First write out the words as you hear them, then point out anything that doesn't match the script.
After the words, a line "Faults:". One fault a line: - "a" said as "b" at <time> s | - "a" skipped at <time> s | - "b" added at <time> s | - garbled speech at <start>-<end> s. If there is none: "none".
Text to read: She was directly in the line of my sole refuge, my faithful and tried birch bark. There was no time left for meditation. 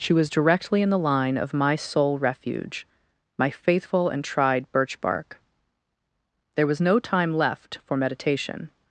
She was directly in the line of my sole refuge, my faithful and tried birch bark. There was no time left for meditation.
Faults:
none